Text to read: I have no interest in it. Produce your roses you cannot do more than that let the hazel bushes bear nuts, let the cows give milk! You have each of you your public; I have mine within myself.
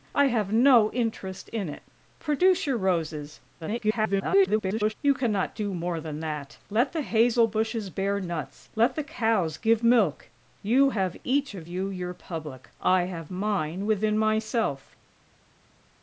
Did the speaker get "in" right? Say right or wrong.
right